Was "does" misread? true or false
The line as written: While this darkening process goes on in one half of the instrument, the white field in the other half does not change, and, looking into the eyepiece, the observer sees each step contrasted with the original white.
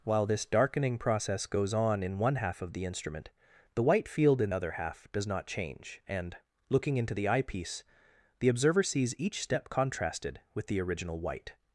false